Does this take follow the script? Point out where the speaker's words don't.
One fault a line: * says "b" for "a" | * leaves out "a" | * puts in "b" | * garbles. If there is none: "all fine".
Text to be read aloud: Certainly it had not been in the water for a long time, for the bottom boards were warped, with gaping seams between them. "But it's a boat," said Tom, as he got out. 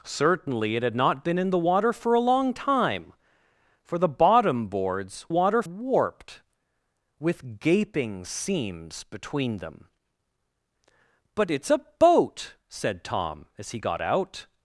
* says "water" for "were"